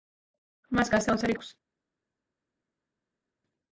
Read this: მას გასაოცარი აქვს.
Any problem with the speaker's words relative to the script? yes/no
no